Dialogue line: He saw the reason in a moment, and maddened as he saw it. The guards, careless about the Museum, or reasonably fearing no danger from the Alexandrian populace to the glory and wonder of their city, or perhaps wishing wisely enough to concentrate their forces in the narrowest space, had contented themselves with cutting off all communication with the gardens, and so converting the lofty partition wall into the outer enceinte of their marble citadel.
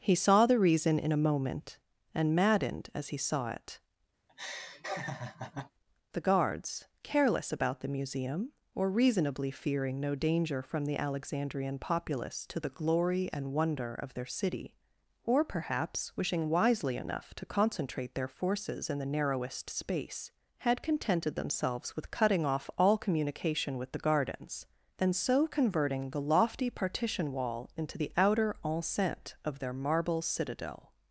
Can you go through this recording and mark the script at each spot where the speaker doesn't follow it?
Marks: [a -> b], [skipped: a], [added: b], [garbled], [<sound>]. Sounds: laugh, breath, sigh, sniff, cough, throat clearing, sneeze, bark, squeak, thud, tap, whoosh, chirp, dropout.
He saw the reason in a moment, and maddened as he saw it. [laugh] The guards, careless about the Museum, or reasonably fearing no danger from the Alexandrian populace to the glory and wonder of their city, or perhaps wishing wisely enough to concentrate their forces in the narrowest space, had contented themselves with cutting off all communication with the gardens, and so converting the lofty partition wall into the outer enceinte of their marble citadel.